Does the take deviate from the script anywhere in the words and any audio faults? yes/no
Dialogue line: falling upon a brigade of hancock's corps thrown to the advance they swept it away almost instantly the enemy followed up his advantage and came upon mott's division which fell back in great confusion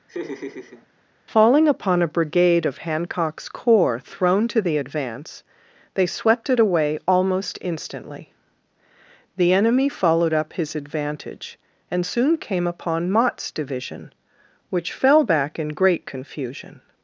yes